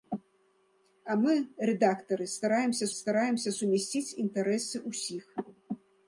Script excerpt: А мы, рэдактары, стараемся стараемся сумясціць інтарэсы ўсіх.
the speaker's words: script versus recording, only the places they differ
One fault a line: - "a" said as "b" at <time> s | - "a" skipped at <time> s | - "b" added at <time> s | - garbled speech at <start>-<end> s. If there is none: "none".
none